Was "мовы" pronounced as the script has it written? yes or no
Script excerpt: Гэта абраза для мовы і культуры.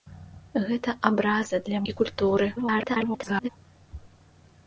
no